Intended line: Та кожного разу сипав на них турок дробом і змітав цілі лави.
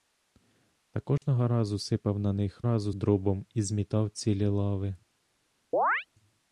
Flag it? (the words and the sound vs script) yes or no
yes